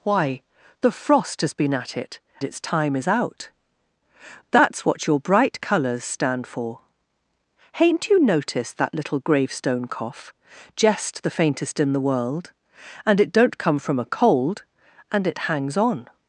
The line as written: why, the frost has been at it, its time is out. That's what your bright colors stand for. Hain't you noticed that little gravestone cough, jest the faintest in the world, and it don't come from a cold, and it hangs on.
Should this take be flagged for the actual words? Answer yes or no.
no